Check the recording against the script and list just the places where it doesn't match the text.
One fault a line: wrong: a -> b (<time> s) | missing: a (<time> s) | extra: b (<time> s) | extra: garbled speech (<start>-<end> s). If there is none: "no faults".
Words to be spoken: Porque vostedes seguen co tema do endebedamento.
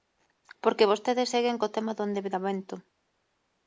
no faults